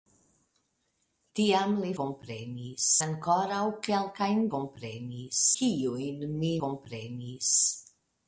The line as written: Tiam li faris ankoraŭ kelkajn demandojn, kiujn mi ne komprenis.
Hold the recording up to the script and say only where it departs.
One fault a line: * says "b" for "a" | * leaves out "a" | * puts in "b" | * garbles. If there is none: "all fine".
* says "komprenis" for "faris"
* says "komprenis" for "demandojn"
* leaves out "ne"